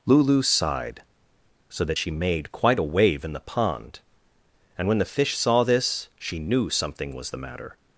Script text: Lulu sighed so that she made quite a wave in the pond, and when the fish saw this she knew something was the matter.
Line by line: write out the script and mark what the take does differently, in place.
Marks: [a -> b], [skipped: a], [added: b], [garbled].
Lulu sighed so that she made quite a wave in the pond, and when the fish saw this she knew something was the matter.